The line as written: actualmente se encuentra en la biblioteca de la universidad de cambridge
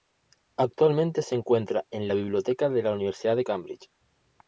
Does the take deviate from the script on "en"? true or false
false